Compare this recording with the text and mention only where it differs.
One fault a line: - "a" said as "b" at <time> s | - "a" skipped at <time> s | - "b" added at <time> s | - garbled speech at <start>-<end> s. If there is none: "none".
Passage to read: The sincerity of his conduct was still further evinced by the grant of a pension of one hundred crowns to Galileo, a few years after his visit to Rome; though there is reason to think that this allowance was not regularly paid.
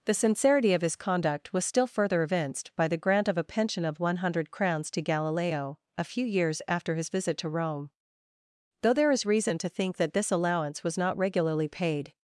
none